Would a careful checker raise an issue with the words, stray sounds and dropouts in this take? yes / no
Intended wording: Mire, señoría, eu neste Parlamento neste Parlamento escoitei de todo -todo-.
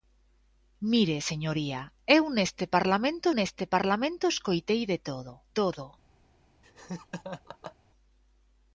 yes